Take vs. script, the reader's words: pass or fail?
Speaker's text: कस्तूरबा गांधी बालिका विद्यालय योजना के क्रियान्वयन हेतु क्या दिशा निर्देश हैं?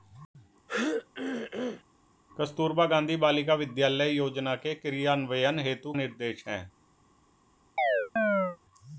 fail